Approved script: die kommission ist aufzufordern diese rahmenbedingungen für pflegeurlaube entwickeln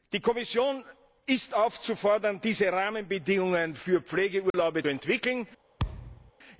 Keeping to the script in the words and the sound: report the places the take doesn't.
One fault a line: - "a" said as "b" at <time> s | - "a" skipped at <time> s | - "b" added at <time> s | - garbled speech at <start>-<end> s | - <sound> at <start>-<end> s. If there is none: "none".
- dropout at 4.5-4.5 s
- thud at 5.8-6.3 s